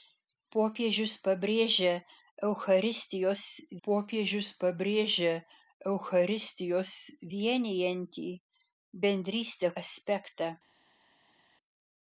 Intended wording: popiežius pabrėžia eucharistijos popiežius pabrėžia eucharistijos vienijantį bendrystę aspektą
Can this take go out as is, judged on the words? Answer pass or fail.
pass